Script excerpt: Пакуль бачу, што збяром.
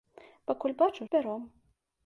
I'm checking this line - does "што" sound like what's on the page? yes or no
no